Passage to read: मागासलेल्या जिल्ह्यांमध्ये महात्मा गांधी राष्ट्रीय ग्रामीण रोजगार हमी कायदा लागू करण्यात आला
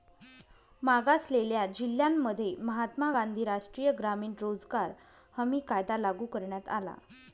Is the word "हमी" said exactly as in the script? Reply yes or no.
yes